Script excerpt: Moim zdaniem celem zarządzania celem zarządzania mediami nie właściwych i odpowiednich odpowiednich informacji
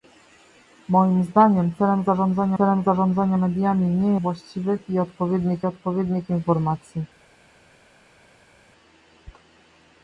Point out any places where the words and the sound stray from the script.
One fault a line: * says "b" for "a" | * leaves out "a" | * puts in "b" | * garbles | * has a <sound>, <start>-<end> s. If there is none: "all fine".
all fine